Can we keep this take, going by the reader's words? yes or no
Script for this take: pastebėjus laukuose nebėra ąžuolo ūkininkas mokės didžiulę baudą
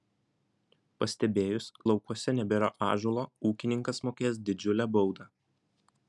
yes